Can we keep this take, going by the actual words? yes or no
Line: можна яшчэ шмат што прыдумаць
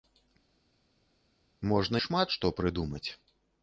no